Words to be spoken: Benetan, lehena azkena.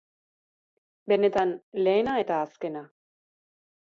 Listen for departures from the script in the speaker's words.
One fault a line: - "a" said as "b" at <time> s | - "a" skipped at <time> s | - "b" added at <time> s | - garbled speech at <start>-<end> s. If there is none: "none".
- "eta" added at 2.2 s